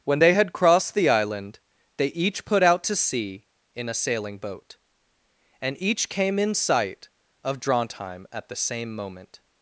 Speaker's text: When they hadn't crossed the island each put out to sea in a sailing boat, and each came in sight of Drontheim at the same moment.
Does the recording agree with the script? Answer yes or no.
no